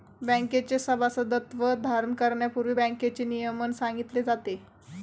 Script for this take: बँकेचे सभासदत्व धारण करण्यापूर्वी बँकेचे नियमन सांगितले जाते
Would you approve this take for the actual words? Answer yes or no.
yes